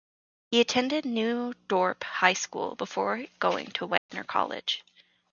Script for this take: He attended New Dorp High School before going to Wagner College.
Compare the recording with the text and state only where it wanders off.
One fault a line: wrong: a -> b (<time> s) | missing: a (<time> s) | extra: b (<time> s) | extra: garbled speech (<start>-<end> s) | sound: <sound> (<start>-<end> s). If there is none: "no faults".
sound: dropout (4.0-4.1 s)